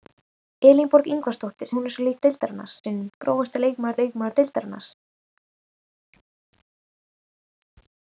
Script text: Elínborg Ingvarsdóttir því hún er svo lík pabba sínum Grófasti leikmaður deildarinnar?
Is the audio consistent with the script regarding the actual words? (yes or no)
no